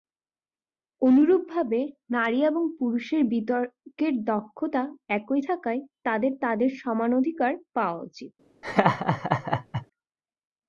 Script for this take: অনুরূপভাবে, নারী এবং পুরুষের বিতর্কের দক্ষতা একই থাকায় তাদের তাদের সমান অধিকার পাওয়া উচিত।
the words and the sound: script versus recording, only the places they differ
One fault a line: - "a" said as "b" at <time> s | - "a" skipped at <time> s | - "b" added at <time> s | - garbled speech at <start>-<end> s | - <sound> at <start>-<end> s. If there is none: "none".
- laugh at 8.6-9.9 s